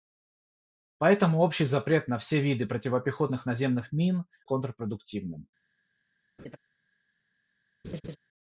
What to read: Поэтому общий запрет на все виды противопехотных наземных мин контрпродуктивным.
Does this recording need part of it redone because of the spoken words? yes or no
no